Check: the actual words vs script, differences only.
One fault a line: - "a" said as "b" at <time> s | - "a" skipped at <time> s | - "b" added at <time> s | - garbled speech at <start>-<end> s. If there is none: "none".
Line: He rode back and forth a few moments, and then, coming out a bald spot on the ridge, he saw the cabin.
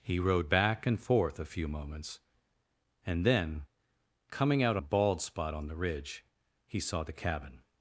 none